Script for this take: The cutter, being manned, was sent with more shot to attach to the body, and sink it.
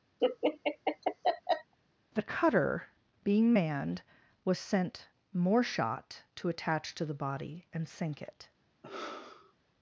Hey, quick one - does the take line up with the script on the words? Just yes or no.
no